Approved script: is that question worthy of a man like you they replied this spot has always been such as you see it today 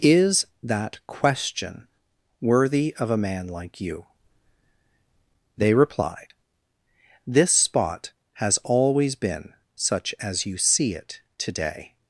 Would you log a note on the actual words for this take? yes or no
no